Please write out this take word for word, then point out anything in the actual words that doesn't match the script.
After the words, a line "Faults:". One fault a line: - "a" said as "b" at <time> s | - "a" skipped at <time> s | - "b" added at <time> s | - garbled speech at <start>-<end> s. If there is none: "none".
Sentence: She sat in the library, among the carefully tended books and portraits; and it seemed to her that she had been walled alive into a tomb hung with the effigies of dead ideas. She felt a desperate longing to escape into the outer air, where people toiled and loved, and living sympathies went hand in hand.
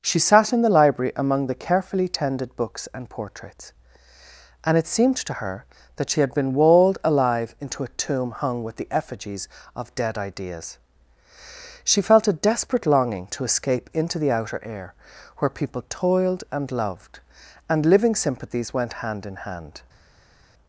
She sat in the library, among the carefully tended books and portraits; and it seemed to her that she had been walled alive into a tomb hung with the effigies of dead ideas. She felt a desperate longing to escape into the outer air, where people toiled and loved, and living sympathies went hand in hand.
Faults:
none